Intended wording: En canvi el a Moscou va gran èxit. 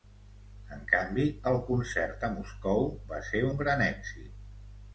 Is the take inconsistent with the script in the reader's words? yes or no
yes